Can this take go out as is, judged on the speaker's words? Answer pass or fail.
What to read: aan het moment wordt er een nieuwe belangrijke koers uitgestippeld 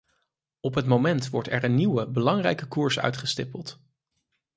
fail